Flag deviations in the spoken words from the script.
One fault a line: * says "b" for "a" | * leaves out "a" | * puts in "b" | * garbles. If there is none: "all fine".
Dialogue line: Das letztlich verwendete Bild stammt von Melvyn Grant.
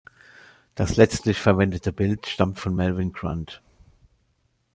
all fine